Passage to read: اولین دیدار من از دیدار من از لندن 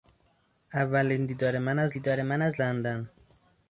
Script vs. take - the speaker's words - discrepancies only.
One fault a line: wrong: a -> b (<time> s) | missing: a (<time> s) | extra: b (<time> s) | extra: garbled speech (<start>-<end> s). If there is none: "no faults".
no faults